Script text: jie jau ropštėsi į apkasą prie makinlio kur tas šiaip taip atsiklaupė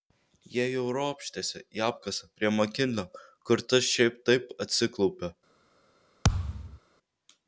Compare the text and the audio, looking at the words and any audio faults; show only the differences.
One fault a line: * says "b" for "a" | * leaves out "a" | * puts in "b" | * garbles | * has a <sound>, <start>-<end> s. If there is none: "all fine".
* has a thud, 6.2-6.8 s